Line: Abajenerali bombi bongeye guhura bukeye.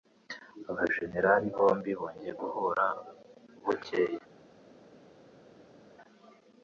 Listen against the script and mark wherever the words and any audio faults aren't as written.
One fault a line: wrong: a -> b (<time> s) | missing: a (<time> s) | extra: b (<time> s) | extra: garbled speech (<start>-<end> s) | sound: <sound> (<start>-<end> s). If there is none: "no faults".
no faults